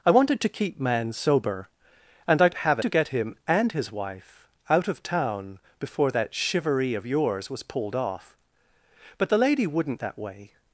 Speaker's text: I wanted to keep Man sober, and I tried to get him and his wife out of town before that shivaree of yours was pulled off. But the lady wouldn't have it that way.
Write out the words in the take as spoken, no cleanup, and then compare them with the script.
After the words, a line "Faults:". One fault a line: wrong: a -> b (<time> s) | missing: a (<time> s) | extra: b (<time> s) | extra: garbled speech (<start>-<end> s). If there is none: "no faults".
I wanted to keep Man sober, and I have to get him and his wife out of town before that shivaree of yours was pulled off. But the lady wouldn't that way.
Faults:
wrong: tried -> have (2.5 s)
missing: have it (10.0 s)